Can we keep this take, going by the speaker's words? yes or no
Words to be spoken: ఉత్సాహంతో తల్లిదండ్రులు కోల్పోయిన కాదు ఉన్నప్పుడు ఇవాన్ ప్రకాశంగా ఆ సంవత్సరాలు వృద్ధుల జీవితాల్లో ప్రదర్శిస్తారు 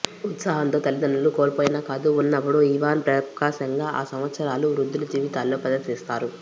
yes